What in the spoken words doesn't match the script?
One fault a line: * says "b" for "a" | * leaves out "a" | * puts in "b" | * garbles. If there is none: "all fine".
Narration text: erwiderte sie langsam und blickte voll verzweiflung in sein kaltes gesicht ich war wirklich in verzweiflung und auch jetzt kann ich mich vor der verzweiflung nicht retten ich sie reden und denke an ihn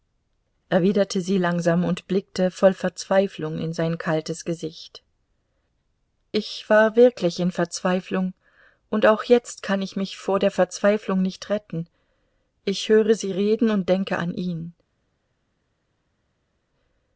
* puts in "höre"